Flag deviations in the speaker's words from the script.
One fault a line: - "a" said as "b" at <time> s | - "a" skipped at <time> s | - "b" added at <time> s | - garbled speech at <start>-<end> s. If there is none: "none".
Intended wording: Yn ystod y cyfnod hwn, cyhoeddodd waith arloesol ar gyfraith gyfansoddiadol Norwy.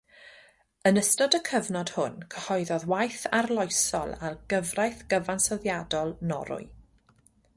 none